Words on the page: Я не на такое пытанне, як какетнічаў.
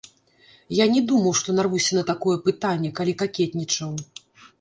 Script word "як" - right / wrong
wrong